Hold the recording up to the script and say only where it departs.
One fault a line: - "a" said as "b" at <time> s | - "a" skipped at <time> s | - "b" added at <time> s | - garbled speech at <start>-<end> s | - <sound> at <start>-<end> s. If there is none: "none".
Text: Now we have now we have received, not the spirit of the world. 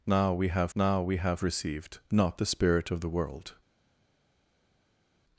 none